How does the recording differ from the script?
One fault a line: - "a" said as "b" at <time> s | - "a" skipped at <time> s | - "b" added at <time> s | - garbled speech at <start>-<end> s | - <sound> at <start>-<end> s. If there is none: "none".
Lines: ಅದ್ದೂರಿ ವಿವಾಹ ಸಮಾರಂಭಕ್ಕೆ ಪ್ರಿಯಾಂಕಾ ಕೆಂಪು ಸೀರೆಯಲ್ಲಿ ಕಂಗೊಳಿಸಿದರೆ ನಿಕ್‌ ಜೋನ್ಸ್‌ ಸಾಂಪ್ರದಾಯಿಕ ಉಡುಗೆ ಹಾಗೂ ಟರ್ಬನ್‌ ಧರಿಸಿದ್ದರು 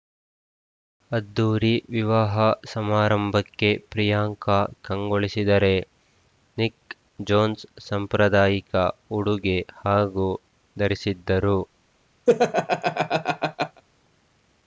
- "ಕೆಂಪು ಸೀರೆಯಲ್ಲಿ" skipped at 4.5 s
- "ಟರ್ಬನ್" skipped at 10.3 s
- laugh at 12.3-13.8 s